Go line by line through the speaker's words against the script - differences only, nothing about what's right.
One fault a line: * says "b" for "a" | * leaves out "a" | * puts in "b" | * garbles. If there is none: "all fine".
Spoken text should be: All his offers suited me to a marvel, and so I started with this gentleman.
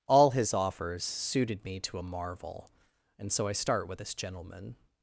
* says "start" for "started"